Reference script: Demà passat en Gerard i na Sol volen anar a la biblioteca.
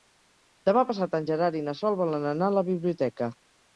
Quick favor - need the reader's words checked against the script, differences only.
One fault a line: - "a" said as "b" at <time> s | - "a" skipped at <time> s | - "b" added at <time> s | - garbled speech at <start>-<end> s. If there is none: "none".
none